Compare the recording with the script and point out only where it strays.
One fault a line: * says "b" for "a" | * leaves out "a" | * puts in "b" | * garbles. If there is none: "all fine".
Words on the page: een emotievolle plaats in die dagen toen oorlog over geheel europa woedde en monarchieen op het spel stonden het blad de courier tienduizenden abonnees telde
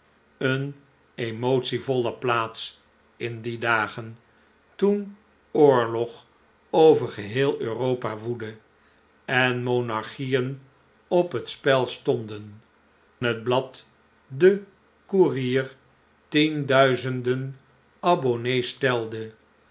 all fine